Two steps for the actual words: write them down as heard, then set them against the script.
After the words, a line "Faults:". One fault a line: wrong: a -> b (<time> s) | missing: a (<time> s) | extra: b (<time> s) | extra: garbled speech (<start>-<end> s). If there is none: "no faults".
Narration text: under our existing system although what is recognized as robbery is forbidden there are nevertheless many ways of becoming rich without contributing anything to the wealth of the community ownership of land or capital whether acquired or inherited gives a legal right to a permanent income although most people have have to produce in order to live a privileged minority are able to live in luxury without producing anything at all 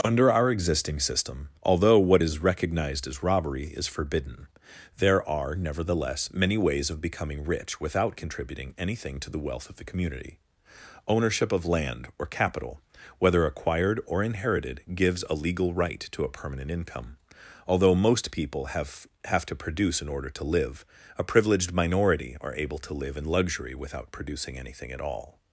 under our existing system although what is recognized as robbery is forbidden there are nevertheless many ways of becoming rich without contributing anything to the wealth of the community ownership of land or capital whether acquired or inherited gives a legal right to a permanent income although most people have have to produce in order to live a privileged minority are able to live in luxury without producing anything at all
Faults:
no faults